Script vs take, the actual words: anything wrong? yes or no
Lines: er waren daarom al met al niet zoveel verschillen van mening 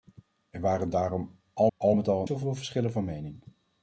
yes